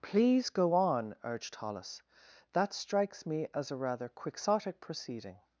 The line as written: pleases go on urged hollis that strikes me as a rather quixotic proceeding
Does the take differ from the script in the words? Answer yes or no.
yes